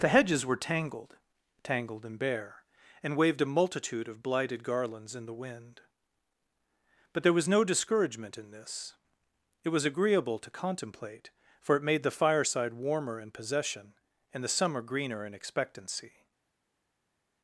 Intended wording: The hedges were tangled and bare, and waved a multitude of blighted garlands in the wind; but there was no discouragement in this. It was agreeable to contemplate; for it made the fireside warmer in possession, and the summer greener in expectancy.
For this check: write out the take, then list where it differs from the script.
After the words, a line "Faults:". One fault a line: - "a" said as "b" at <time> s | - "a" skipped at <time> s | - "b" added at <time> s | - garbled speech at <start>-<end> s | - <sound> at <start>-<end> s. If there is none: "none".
The hedges were tangled tangled and bare, and waved a multitude of blighted garlands in the wind; but there was no discouragement in this. It was agreeable to contemplate; for it made the fireside warmer in possession, and the summer greener in expectancy.
Faults:
- "tangled" added at 1.6 s